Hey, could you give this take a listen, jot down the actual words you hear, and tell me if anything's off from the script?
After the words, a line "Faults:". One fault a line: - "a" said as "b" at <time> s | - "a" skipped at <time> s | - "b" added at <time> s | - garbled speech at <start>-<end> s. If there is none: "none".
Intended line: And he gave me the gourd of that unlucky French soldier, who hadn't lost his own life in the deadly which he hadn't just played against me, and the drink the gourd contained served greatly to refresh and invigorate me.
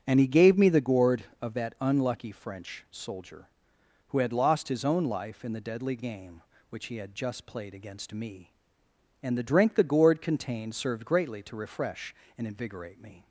And he gave me the gourd of that unlucky French soldier, who had lost his own life in the deadly game which he had just played against me, and the drink the gourd contained served greatly to refresh and invigorate me.
Faults:
- "hadn't" said as "had" at 4.2 s
- "game" added at 6.0 s
- "hadn't" said as "had" at 7.0 s